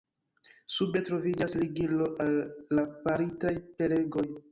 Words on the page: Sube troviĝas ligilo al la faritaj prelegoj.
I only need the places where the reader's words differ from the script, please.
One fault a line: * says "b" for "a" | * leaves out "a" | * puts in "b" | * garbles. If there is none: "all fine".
all fine